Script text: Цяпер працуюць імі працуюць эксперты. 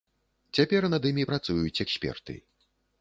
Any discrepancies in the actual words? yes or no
yes